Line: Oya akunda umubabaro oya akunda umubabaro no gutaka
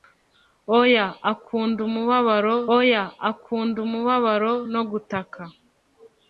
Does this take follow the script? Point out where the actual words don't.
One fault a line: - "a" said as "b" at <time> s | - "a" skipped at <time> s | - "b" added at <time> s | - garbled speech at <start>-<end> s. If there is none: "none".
none